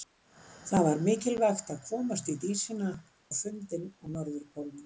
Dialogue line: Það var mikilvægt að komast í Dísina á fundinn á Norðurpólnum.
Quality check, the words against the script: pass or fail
pass